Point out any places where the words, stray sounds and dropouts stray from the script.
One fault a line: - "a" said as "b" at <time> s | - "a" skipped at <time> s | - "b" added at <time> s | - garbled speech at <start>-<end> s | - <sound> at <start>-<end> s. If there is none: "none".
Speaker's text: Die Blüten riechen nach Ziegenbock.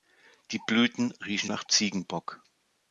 none